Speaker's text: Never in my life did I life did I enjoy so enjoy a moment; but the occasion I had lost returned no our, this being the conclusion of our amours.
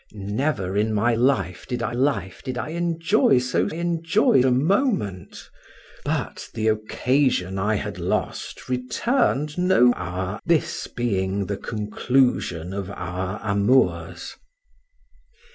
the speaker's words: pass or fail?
pass